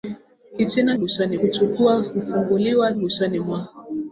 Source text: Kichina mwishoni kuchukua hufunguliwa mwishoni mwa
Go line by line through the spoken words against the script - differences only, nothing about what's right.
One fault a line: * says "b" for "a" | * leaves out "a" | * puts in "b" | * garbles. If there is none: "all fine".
all fine